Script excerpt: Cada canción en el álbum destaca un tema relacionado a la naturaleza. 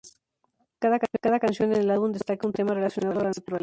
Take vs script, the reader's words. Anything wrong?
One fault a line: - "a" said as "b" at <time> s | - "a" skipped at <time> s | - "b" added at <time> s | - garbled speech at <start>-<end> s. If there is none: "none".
none